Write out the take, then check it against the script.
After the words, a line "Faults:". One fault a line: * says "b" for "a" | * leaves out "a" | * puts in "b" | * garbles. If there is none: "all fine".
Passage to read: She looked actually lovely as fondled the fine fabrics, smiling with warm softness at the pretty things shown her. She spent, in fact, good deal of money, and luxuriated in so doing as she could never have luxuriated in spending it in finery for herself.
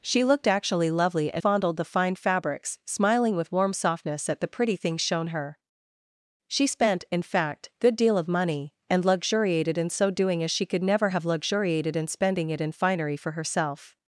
She looked actually lovely as fondled the fine fabrics, smiling with warm softness at the pretty things shown her. She spent, in fact, good deal of money, and luxuriated in so doing as she could never have luxuriated in spending it in finery for herself.
Faults:
all fine